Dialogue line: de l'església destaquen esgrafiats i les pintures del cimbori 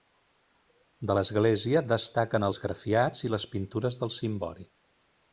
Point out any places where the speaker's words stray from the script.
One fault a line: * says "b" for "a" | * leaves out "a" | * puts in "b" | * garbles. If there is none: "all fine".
all fine